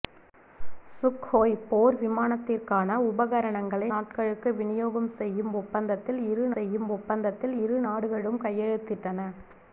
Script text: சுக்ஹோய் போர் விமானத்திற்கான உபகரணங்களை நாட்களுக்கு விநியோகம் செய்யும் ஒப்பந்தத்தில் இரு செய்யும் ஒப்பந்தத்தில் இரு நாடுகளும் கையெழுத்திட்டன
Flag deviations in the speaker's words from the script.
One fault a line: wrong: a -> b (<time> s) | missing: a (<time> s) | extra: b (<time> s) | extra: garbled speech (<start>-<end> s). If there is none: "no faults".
no faults